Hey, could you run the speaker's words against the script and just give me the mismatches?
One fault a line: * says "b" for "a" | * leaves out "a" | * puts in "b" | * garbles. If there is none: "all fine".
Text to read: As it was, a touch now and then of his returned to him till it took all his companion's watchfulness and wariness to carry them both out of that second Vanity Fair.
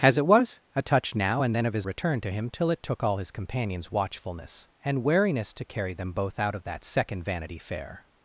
all fine